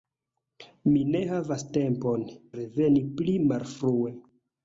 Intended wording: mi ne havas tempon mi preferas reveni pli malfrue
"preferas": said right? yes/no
no